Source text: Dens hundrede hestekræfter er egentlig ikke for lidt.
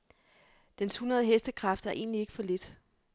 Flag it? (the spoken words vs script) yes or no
no